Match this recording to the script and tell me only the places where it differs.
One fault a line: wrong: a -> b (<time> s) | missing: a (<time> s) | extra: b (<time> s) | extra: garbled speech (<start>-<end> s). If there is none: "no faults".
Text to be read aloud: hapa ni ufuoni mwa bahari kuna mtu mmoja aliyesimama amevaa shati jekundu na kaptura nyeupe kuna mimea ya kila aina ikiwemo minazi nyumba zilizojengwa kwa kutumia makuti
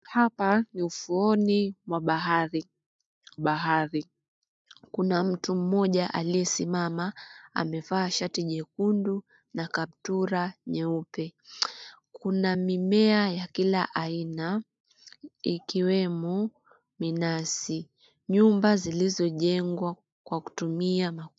extra: bahari (3.4 s)